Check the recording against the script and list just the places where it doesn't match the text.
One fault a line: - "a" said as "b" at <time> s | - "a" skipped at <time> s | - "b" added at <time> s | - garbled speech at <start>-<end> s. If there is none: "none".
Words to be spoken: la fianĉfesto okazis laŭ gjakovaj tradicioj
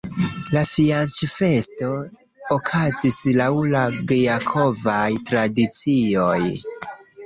- "la" added at 3.8 s